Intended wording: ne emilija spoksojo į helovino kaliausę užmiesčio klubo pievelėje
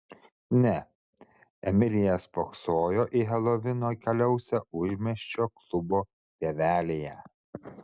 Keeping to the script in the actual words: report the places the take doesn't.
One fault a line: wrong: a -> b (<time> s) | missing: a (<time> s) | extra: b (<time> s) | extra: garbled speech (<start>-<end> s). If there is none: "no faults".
no faults